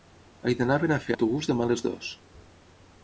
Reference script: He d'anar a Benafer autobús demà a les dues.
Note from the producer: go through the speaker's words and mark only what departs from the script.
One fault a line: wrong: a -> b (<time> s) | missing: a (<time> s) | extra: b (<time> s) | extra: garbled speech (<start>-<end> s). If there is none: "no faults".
no faults